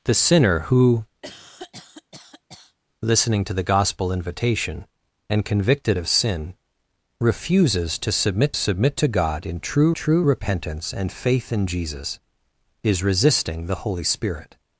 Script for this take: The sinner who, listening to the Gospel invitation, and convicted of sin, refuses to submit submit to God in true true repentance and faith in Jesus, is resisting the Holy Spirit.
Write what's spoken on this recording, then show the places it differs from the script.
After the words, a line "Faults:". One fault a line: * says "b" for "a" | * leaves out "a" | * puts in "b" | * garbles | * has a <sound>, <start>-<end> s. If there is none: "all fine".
The sinner who, listening to the Gospel invitation, and convicted of sin, refuses to submit submit to God in true true repentance and faith in Jesus, is resisting the Holy Spirit.
Faults:
* has a cough, 1.2-2.8 s